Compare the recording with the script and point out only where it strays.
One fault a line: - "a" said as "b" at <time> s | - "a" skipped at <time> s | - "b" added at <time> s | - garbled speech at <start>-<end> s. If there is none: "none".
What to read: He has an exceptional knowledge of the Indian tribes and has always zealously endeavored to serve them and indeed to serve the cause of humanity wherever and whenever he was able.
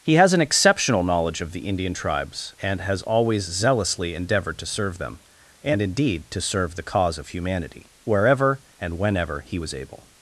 none